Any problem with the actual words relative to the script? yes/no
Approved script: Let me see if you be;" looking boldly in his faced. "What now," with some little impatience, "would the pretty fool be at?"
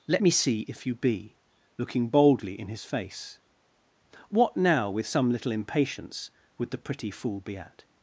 yes